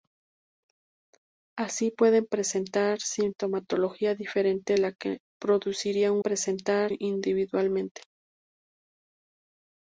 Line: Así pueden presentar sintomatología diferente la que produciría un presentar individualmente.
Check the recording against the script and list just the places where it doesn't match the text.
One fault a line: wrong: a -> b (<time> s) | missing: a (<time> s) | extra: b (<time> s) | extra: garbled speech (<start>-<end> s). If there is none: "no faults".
no faults